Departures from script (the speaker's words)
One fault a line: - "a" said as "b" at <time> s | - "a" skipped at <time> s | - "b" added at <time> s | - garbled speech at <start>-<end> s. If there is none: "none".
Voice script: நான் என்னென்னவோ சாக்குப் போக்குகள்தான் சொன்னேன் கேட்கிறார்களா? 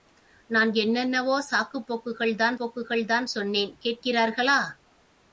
- "போக்குகள்தான்" added at 2.6 s